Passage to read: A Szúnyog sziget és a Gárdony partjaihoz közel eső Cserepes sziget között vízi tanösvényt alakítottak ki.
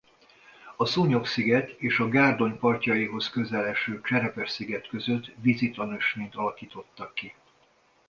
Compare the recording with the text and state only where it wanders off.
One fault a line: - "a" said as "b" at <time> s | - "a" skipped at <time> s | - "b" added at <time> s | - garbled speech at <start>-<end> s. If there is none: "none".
none